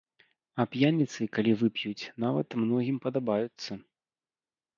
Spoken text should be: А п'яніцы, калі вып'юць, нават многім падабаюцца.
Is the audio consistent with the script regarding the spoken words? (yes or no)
yes